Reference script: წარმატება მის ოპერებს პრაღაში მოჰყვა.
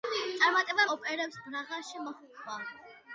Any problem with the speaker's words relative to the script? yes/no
yes